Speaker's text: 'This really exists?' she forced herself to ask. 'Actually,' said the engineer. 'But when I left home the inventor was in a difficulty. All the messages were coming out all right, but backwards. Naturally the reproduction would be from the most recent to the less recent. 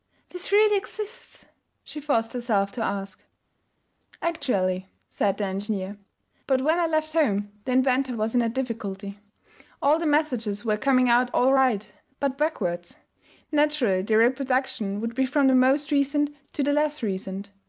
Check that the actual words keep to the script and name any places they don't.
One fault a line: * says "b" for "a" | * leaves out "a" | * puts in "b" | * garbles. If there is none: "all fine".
all fine